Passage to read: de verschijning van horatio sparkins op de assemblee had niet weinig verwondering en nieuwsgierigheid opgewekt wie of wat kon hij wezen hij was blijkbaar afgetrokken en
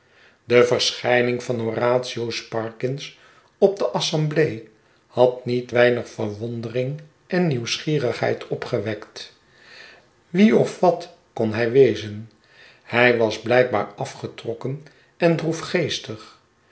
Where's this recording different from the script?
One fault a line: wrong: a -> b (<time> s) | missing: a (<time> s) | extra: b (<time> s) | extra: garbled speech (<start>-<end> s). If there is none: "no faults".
no faults